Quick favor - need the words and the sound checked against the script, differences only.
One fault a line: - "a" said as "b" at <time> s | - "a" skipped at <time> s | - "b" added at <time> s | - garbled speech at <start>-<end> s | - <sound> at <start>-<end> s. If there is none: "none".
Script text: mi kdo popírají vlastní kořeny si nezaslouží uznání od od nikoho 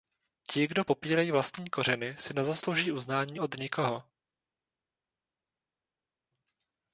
- "mi" said as "ti" at 0.5 s
- "od" skipped at 3.5 s